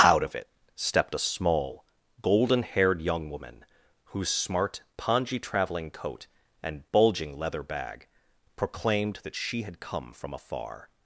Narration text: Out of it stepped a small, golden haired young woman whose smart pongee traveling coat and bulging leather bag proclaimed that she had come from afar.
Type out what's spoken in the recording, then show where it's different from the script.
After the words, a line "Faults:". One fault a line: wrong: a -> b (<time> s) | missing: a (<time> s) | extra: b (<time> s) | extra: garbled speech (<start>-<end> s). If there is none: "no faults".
Out of it stepped a small, golden haired young woman whose smart pongee traveling coat and bulging leather bag proclaimed that she had come from afar.
Faults:
no faults